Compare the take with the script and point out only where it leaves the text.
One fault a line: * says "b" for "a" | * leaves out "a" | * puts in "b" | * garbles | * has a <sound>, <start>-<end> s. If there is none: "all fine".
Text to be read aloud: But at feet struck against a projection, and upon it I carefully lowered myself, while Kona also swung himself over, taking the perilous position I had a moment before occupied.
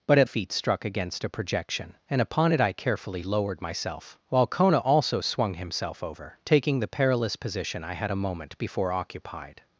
all fine